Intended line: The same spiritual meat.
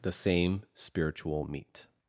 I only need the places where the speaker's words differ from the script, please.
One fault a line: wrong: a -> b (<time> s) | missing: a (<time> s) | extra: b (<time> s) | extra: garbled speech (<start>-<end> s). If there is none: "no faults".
no faults